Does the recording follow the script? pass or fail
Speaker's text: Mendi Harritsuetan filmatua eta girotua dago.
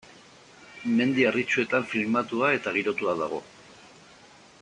pass